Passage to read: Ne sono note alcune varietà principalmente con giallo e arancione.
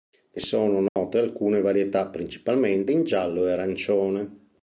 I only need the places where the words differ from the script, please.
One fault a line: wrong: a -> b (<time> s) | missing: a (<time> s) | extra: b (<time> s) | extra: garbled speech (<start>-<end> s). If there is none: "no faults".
wrong: con -> in (2.9 s)